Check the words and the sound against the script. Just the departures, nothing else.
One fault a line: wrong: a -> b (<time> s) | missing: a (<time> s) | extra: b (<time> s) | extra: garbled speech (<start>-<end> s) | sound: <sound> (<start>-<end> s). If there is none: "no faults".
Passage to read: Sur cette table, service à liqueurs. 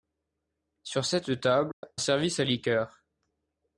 sound: dropout (1.7-1.8 s)